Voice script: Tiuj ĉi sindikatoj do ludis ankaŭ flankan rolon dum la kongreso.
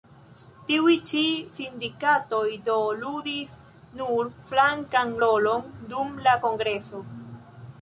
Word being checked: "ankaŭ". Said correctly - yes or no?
no